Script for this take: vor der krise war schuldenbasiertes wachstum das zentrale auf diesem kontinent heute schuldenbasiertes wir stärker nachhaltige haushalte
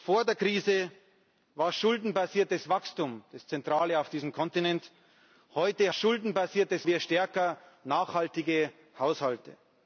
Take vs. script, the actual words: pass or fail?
pass